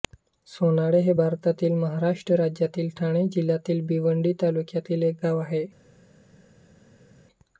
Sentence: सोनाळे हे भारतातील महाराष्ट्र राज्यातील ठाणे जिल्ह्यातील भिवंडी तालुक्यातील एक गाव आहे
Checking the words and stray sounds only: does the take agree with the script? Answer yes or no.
yes